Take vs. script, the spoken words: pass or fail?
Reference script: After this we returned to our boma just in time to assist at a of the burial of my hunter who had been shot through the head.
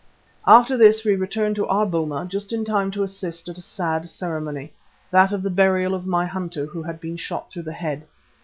fail